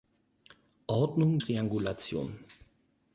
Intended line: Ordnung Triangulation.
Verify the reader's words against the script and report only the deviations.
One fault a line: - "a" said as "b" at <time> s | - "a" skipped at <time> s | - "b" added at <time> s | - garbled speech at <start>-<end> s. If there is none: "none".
none